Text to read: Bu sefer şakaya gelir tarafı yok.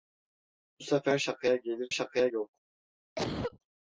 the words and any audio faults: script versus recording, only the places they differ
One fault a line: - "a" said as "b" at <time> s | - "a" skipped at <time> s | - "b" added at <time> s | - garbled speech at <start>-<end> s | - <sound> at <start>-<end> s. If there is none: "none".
- "tarafı" said as "şakaya" at 1.9 s
- cough at 3.2-3.6 s